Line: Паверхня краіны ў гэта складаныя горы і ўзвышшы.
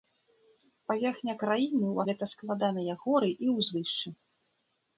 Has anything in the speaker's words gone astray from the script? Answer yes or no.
no